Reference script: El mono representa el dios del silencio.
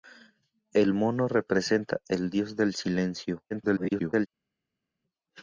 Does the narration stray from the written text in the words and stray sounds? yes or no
yes